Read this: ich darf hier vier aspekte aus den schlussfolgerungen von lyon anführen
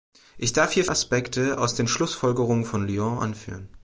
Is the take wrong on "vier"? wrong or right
wrong